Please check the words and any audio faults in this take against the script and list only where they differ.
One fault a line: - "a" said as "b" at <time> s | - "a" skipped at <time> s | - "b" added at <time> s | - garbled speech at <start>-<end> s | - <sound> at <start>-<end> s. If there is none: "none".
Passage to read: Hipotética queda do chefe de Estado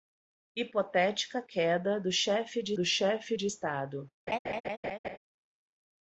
- "do chefe de" added at 2.7 s
- laugh at 4.3-5.2 s